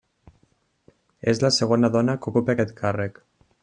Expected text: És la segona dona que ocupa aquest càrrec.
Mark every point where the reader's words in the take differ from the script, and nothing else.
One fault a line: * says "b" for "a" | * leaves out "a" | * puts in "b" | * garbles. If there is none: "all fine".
all fine